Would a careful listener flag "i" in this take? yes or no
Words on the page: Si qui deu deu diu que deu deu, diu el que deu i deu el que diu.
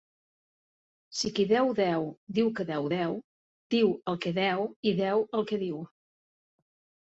no